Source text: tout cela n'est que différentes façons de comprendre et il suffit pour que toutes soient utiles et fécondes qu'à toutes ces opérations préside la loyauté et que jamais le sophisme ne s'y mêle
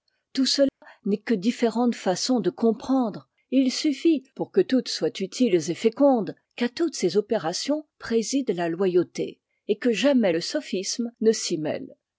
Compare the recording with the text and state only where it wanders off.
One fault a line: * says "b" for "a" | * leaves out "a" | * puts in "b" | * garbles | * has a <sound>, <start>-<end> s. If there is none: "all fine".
* has a dropout, 0.7-0.8 s